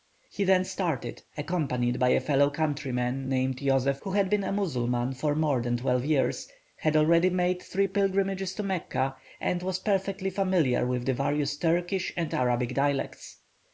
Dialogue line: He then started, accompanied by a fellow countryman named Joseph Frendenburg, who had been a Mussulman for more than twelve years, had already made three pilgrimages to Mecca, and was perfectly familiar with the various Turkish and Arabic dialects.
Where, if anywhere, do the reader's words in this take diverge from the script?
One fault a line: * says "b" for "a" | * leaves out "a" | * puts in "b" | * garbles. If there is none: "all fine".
* leaves out "Frendenburg"